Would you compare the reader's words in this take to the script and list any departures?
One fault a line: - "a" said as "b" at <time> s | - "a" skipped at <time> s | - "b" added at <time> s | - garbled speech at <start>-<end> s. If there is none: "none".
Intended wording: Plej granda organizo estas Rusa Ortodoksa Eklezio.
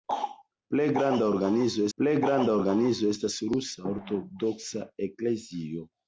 - "plej granda organizo" added at 2.0 s